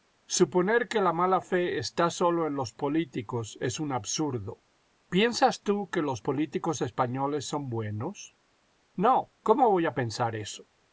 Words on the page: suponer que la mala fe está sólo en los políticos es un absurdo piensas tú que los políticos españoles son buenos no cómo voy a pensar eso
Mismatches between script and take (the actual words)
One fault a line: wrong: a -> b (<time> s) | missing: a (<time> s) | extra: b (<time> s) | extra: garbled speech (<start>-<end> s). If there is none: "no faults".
no faults